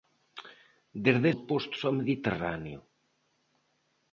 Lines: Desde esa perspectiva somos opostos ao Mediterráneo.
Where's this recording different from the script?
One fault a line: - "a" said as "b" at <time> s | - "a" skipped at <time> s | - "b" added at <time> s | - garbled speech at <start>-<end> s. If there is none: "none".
- "esa perspectiva somos" skipped at 1.3 s